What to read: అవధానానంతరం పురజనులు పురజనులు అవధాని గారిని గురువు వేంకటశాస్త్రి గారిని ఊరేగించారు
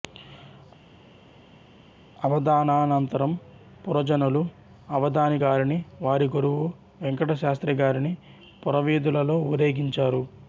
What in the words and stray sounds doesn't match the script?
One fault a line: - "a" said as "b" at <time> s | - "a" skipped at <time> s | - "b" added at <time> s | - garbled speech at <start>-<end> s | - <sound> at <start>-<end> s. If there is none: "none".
- "పురజనులు" skipped at 4.4 s
- "వారి" added at 6.0 s
- "పురవీధులలో" added at 8.6 s